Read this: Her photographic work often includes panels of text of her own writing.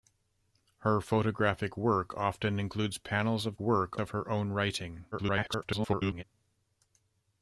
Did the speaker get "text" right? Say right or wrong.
wrong